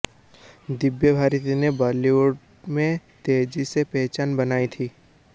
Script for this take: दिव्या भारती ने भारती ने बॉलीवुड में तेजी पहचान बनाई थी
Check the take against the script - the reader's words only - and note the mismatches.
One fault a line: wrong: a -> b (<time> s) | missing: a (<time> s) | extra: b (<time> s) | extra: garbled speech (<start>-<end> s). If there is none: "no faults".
missing: भारती ने (1.7 s)
extra: से (3.6 s)